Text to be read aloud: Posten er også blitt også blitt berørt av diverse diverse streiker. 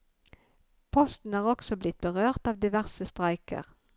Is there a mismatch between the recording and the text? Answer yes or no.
yes